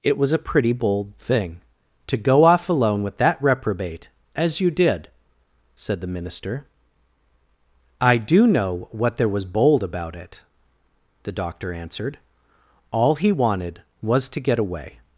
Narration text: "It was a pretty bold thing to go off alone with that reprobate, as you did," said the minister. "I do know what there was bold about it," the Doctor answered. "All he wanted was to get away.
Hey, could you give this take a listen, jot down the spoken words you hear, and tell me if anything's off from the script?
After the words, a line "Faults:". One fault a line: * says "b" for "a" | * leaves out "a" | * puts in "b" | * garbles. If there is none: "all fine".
"It was a pretty bold thing to go off alone with that reprobate, as you did," said the minister. "I do know what there was bold about it," the Doctor answered. "All he wanted was to get away.
Faults:
all fine